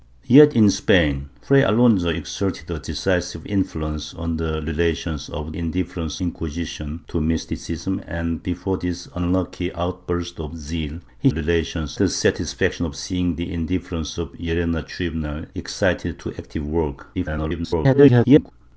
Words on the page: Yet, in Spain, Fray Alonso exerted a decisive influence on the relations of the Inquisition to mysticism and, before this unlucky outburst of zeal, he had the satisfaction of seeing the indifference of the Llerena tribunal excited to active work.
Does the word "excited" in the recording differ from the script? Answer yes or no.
no